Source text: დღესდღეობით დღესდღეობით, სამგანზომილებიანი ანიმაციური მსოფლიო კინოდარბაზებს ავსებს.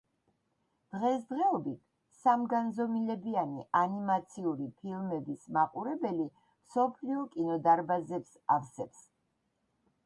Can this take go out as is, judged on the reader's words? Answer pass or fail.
fail